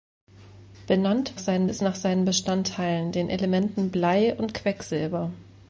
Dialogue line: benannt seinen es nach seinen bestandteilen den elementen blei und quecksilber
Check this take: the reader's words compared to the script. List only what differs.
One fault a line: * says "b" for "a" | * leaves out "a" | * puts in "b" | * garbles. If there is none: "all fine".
all fine